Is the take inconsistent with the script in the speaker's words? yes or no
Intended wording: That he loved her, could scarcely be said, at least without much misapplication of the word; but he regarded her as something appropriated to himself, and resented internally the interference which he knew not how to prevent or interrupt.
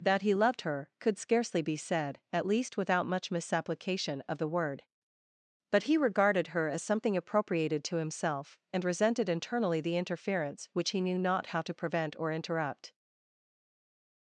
no